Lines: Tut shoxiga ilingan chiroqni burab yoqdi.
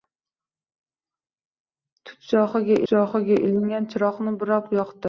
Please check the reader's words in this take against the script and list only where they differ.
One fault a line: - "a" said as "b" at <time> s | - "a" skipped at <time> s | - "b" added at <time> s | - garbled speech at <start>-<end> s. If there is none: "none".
- "shoxiga" added at 2.9 s